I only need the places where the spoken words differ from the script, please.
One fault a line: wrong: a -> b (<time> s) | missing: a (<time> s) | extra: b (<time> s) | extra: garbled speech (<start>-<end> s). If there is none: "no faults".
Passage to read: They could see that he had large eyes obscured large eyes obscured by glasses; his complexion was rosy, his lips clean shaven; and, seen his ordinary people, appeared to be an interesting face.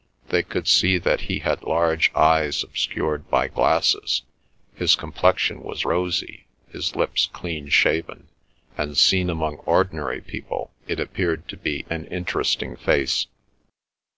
missing: large eyes obscured (3.3 s)
wrong: his -> among (9.3 s)
extra: it (10.9 s)